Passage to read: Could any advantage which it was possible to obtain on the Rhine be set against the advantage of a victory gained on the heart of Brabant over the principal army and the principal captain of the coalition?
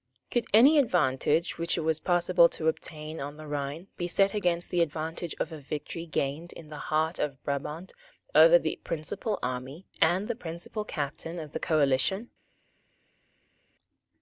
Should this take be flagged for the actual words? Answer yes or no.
yes